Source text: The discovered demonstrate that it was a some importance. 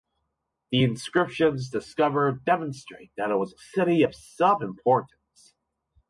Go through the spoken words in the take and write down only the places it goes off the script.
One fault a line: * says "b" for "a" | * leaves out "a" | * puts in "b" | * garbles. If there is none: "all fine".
* puts in "inscriptions"
* puts in "city of"